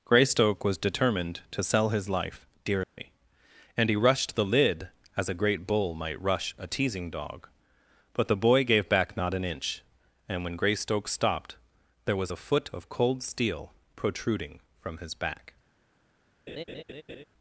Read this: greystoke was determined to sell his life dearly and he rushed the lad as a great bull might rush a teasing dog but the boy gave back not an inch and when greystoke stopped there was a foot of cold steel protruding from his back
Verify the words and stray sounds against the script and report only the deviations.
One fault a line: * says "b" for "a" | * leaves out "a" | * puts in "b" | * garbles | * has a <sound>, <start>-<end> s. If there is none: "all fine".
* has a dropout, 2.8-3.0 s
* says "lid" for "lad"
* has a laugh, 16.5-17.2 s